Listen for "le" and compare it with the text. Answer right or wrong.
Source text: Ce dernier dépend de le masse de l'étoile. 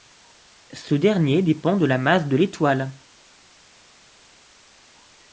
wrong